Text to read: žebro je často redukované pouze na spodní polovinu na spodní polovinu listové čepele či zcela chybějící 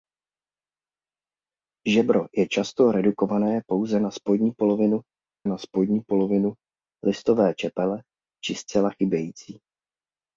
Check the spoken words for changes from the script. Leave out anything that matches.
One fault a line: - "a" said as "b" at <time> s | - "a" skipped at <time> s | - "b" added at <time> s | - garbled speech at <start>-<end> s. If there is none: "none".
none